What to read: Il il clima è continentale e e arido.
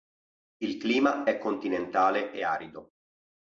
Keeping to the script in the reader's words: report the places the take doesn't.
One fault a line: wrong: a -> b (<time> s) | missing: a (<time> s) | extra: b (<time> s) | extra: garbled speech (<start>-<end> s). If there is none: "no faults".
missing: il (0.8 s)
missing: e (2.4 s)